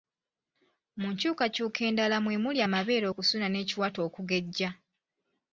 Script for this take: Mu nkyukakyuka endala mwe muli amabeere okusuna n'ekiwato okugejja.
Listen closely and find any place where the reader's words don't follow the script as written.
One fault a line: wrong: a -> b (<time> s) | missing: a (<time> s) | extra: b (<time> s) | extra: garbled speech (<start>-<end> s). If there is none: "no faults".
no faults